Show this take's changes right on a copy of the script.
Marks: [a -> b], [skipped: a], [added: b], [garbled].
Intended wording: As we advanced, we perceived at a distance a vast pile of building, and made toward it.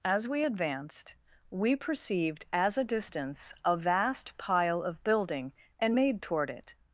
As we advanced, we perceived [at -> as] a distance a vast pile of building, and made toward it.